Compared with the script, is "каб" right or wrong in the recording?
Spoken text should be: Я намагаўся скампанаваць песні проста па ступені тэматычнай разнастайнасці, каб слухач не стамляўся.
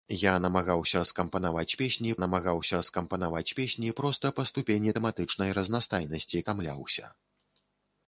wrong